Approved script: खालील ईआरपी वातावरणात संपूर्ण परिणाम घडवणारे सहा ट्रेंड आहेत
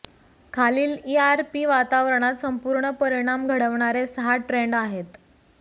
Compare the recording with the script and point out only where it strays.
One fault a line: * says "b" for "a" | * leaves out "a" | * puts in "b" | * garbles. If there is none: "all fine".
all fine